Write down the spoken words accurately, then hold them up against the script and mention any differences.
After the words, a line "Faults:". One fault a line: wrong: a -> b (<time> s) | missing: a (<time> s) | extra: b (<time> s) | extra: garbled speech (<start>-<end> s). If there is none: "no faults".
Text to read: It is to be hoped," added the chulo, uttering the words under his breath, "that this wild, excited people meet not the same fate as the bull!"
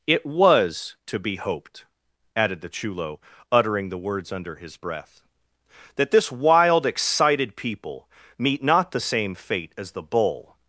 It was to be hoped," added the chulo, uttering the words under his breath, "that this wild, excited people meet not the same fate as the bull!"
Faults:
wrong: is -> was (0.2 s)